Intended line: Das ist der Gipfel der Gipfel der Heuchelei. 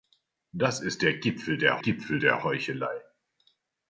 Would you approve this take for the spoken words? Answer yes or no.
yes